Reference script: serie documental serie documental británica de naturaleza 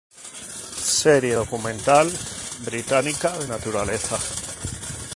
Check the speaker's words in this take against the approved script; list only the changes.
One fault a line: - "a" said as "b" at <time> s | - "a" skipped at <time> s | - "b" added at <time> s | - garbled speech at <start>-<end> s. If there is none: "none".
- "serie documental" skipped at 2.1 s